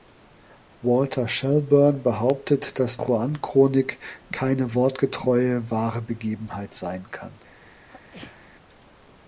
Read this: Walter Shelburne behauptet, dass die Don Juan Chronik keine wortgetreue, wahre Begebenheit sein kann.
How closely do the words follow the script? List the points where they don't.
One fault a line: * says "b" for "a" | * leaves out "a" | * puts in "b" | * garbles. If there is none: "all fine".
* leaves out "die Don"